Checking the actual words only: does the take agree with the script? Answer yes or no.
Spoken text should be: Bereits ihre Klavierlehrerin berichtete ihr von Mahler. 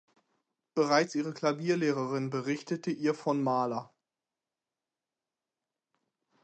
yes